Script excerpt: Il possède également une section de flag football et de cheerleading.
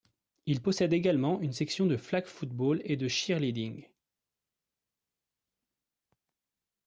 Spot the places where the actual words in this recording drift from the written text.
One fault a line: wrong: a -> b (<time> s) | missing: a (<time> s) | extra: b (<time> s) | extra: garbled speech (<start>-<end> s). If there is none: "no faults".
no faults